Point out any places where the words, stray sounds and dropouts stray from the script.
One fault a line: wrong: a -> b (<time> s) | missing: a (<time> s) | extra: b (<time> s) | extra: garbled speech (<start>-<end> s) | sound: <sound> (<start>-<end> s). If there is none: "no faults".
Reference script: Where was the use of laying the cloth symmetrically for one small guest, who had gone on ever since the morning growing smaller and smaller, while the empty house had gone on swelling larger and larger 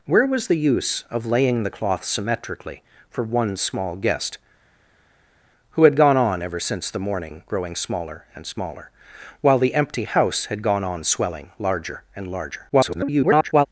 extra: garbled speech (12.7-13.7 s)